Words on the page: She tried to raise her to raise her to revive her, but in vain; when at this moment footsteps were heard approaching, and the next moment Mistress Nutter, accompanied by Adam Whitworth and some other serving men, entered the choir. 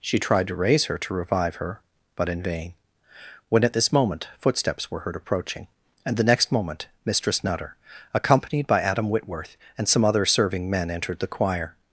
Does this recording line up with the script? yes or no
no